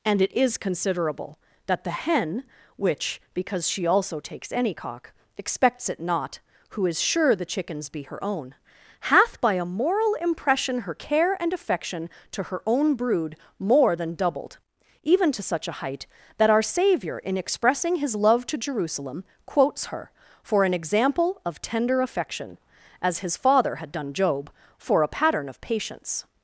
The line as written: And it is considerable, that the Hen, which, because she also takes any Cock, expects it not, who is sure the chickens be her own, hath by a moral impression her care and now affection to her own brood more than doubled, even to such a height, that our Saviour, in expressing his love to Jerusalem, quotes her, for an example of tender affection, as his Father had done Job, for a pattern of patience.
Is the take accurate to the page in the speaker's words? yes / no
no